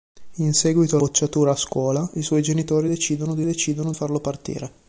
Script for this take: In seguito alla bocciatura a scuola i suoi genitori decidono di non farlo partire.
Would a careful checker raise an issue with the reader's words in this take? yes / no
yes